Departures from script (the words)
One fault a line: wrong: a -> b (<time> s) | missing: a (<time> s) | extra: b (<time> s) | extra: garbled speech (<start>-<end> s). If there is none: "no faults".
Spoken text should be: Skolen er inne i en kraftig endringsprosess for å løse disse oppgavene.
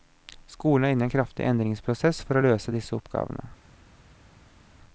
no faults